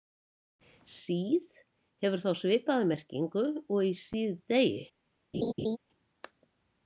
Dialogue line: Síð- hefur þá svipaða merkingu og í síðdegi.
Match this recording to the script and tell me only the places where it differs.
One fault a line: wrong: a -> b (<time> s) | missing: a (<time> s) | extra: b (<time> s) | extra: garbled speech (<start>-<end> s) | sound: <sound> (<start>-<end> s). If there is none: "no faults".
sound: laugh (5.3-5.8 s)